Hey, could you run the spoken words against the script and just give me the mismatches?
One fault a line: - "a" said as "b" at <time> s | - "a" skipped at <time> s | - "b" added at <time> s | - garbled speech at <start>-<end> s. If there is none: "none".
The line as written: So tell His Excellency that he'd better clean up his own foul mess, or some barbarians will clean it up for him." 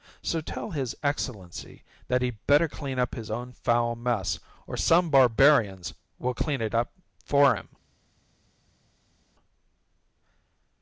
none